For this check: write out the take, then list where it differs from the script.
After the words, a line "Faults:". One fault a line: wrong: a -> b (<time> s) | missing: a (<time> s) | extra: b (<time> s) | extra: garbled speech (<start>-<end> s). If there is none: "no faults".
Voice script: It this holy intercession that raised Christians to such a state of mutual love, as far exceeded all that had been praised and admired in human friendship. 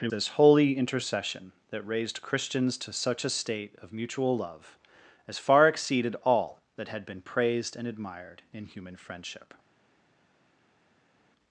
It this holy intercession that raised Christians to such a state of mutual love, as far exceeded all that had been praised and admired in human friendship.
Faults:
no faults